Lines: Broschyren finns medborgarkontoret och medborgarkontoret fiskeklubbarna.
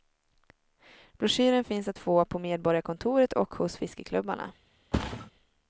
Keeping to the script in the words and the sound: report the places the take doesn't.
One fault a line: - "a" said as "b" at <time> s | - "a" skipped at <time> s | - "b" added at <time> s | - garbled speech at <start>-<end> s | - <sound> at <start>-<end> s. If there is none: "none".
- "att få på" added at 1.9 s
- "medborgarkontoret" said as "hos" at 3.5 s
- thud at 4.9-5.3 s